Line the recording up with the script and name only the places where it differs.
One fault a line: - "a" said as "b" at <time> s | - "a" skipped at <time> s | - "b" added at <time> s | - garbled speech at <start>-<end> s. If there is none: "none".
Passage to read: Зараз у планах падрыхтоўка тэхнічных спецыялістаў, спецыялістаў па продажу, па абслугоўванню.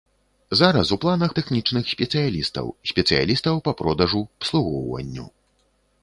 - "падрыхтоўка" skipped at 1.3 s
- "па" skipped at 4.2 s